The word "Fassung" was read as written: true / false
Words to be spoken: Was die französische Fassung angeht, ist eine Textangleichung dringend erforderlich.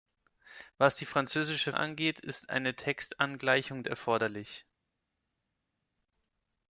false